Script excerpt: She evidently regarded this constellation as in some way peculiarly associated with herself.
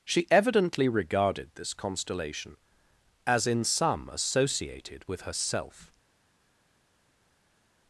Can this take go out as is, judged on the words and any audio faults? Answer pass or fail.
fail